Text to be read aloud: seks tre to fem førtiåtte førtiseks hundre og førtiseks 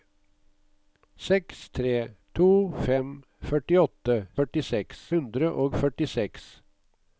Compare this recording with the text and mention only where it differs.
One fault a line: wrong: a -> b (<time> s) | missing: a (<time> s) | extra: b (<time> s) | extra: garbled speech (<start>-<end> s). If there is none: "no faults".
no faults